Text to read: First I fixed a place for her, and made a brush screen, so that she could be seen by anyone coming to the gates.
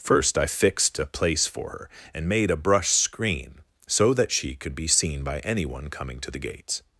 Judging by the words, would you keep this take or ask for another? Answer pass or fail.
pass